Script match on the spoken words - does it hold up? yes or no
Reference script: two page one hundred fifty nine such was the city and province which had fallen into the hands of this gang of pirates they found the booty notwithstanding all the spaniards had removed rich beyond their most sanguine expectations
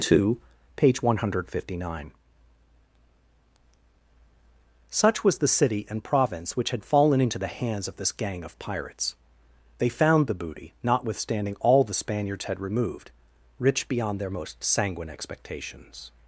yes